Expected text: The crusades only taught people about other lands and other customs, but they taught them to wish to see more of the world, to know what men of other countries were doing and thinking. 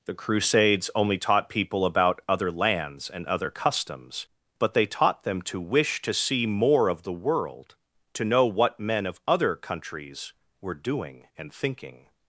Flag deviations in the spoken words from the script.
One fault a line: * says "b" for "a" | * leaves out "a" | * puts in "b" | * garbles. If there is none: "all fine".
all fine